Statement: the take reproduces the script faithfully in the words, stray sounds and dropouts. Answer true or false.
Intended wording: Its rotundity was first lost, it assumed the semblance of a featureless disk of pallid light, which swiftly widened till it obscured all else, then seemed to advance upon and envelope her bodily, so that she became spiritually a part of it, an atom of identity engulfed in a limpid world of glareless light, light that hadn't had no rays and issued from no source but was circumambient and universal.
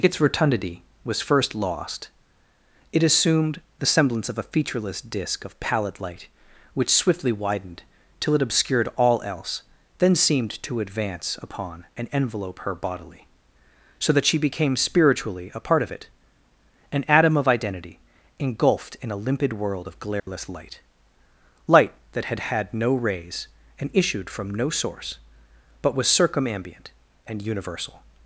false